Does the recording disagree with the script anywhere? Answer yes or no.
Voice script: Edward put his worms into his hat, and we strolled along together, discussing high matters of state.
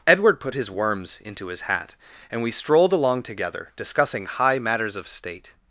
no